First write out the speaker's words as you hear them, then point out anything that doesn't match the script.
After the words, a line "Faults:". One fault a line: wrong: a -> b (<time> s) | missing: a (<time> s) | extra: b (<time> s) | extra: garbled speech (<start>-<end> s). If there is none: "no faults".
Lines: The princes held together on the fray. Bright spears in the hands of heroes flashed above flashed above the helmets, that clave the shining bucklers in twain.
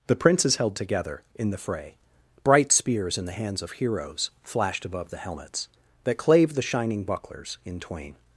The princes held together in the fray. Bright spears in the hands of heroes flashed above the helmets, that clave the shining bucklers in twain.
Faults:
wrong: on -> in (1.4 s)
missing: flashed above (5.1 s)